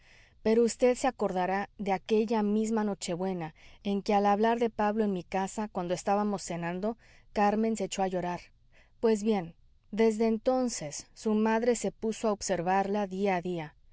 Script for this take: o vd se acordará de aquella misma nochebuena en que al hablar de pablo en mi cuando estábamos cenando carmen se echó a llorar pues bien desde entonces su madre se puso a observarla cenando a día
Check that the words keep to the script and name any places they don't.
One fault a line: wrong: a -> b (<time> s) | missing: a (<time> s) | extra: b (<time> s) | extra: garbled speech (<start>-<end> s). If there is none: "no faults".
wrong: o -> pero (0.4 s)
extra: casa (5.2 s)
wrong: cenando -> día (13.1 s)